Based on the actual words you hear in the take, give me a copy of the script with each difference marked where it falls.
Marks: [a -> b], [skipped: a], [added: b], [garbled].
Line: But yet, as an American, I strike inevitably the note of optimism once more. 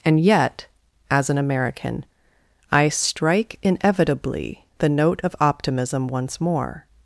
[But -> And] yet, as an American, I strike inevitably the note of optimism once more.